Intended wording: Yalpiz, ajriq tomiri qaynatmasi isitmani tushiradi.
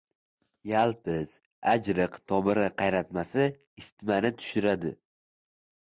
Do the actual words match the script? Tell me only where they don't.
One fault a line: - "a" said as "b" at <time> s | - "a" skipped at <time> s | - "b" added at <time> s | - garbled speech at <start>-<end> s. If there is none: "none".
none